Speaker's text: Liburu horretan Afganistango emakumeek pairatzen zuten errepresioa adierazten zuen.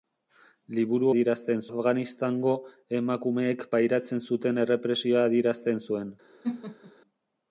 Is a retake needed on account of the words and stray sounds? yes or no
yes